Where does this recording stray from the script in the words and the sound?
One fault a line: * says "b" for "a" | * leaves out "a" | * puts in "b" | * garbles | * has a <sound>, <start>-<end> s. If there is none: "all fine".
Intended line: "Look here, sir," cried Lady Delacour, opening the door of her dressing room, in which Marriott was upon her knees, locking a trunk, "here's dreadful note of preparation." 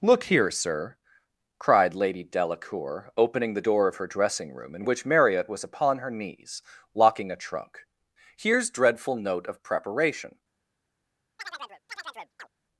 * has a chirp, 11.4-12.5 s